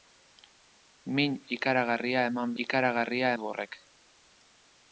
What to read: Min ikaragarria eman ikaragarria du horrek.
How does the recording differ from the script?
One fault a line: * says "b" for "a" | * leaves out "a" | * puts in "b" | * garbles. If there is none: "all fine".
all fine